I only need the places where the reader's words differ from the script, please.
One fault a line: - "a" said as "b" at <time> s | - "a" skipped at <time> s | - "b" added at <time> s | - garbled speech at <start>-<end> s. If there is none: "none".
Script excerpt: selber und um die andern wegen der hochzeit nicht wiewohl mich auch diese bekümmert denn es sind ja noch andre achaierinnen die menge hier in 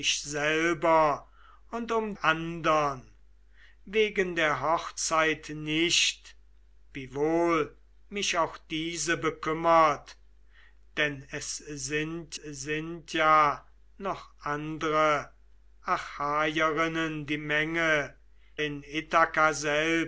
- "die" skipped at 2.1 s
- "sind" added at 12.3 s
- "hier" skipped at 18.2 s